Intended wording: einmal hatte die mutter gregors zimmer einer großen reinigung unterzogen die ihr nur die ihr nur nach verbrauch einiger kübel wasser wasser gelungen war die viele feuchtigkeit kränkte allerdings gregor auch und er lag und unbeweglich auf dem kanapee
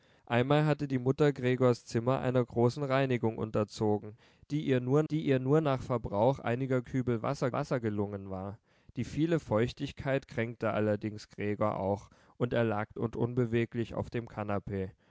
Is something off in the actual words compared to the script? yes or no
no